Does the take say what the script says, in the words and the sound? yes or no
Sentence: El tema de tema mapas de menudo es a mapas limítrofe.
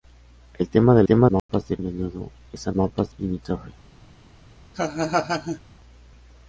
no